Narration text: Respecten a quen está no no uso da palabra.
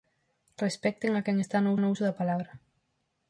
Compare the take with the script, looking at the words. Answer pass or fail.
pass